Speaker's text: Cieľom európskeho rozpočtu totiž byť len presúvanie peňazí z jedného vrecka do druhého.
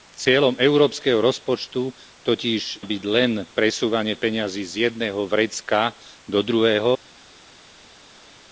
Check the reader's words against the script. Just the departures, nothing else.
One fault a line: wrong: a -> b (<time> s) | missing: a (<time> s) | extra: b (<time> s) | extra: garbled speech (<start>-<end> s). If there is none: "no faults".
no faults